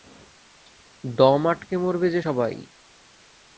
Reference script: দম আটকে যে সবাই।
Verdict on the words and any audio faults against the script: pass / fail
fail